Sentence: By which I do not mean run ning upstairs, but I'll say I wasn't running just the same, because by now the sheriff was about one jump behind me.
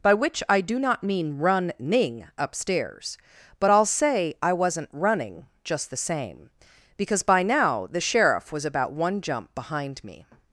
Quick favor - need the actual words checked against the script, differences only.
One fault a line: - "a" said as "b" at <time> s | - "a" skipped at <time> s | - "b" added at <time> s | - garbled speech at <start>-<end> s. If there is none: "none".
none